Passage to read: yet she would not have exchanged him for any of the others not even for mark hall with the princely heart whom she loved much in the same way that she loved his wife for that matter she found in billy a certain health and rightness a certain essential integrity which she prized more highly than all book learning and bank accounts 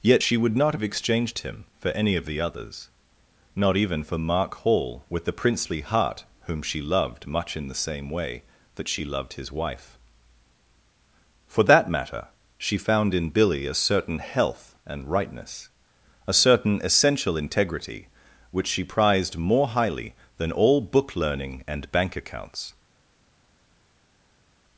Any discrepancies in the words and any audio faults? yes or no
no